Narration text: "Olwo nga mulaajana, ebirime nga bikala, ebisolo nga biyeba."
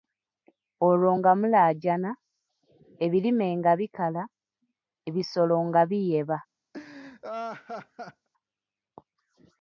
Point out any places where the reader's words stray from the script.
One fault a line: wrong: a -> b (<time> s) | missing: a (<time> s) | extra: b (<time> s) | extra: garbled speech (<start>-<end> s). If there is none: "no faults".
no faults